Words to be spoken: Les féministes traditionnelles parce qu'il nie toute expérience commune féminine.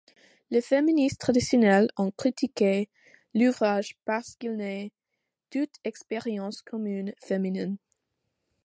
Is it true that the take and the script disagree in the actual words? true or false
true